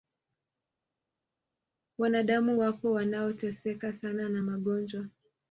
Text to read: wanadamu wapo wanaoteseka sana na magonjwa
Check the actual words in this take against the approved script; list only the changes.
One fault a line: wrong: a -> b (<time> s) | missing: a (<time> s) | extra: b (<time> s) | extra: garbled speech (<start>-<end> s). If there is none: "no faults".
no faults